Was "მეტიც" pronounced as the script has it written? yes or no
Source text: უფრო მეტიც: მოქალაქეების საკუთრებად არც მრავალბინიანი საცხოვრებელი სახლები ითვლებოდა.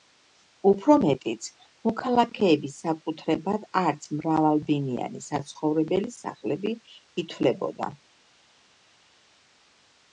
yes